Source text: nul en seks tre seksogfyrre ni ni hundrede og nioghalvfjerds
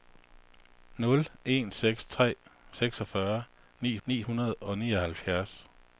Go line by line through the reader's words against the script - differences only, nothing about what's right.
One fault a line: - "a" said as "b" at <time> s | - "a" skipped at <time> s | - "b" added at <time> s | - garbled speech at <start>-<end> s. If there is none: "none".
none